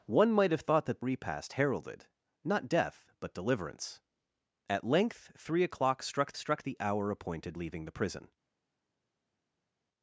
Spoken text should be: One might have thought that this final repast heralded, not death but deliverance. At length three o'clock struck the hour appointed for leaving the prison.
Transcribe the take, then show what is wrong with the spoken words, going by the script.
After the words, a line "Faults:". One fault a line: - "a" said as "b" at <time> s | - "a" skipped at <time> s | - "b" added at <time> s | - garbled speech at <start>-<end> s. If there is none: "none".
One might have thought that repast heralded, not death but deliverance. At length three o'clock struck struck the hour appointed leaving the prison.
Faults:
- "this final" skipped at 1.0 s
- "struck" added at 6.3 s
- "for" skipped at 7.6 s